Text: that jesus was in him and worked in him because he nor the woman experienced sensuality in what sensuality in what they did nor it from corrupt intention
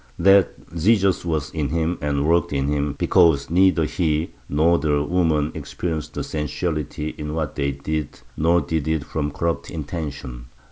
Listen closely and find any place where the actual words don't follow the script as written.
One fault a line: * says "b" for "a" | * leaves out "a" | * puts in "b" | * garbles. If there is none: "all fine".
* puts in "neither"
* leaves out "sensuality in what"
* puts in "did"